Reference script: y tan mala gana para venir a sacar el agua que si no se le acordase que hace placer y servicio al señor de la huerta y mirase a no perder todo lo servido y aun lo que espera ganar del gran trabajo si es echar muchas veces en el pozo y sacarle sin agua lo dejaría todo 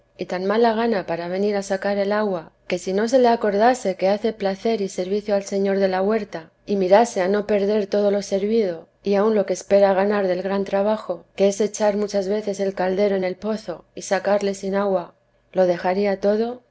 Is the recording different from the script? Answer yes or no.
yes